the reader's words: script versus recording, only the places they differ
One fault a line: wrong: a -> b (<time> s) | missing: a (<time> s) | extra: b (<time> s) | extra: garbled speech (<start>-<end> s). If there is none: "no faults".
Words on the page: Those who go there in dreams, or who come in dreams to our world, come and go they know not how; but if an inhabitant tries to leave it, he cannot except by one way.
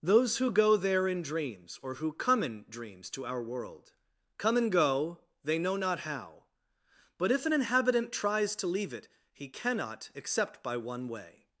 no faults